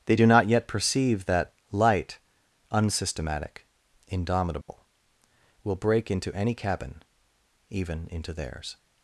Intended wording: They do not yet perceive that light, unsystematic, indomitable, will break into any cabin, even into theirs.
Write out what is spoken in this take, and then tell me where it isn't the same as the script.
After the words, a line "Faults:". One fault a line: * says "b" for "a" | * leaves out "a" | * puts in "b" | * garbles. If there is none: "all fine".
They do not yet perceive that light, unsystematic, indomitable, will break into any cabin, even into theirs.
Faults:
all fine